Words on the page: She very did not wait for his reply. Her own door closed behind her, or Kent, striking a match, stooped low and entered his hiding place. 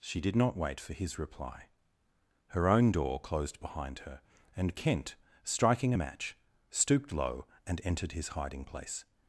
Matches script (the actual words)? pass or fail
fail